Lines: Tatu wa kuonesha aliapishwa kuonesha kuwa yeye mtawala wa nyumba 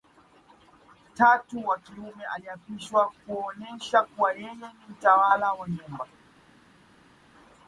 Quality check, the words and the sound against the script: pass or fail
fail